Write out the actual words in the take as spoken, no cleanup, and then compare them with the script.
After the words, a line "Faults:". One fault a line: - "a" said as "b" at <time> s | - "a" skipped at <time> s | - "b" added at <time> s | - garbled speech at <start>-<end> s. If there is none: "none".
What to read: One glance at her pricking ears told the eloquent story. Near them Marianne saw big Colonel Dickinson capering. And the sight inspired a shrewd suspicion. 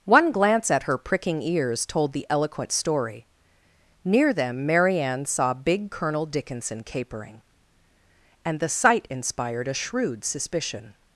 One glance at her pricking ears told the eloquent story. Near them Marianne saw big Colonel Dickinson capering. And the sight inspired a shrewd suspicion.
Faults:
none